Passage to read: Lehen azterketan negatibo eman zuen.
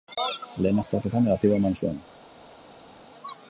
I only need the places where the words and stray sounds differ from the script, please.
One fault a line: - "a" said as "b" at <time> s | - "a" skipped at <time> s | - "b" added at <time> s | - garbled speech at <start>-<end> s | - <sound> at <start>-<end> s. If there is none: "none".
none